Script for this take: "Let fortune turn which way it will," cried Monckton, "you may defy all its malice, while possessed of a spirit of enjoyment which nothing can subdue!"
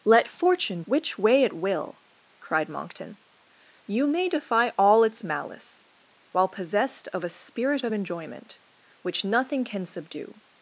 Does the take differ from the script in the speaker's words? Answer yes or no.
yes